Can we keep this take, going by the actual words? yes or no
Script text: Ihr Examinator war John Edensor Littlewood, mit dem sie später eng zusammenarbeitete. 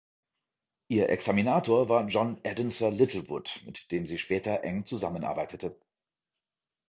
yes